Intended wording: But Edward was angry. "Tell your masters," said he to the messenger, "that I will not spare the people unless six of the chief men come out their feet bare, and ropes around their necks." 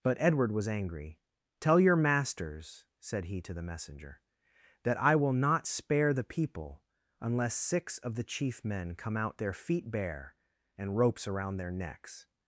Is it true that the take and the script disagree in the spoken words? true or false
false